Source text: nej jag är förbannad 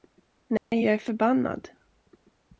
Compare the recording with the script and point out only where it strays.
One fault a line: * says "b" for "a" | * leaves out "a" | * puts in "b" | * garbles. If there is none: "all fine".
all fine